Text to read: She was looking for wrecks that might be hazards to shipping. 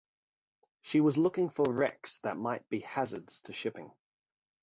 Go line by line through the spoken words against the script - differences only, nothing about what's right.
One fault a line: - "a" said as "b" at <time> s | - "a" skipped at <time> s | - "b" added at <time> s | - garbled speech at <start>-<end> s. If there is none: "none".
none